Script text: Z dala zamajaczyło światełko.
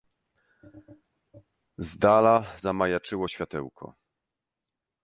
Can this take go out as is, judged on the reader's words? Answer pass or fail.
pass